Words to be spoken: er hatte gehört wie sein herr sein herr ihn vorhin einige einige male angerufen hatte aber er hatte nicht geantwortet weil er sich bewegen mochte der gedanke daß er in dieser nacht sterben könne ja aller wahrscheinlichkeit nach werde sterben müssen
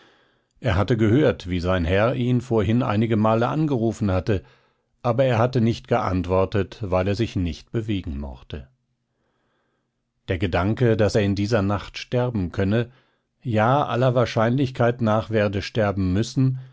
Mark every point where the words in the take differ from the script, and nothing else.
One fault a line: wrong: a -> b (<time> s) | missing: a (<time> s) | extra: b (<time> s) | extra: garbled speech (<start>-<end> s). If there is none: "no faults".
missing: sein herr (2.1 s)
missing: einige (3.1 s)
extra: nicht (7.4 s)